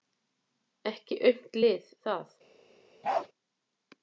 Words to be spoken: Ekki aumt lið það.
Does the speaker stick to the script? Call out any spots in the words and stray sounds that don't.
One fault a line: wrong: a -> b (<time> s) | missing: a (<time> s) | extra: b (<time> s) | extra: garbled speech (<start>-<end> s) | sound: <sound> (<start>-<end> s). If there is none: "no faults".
sound: bark (3.0-3.3 s)